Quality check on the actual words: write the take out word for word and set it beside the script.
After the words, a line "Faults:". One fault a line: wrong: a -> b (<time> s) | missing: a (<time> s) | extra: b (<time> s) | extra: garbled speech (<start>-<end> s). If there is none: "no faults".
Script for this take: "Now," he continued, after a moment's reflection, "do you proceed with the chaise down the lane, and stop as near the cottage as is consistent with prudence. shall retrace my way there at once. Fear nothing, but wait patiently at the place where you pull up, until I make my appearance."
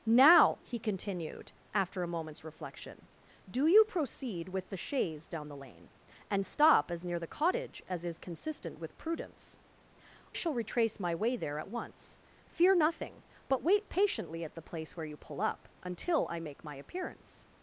"Now," he continued, after a moment's reflection, "do you proceed with the chaise down the lane, and stop as near the cottage as is consistent with prudence. shall retrace my way there at once. Fear nothing, but wait patiently at the place where you pull up, until I make my appearance."
Faults:
no faults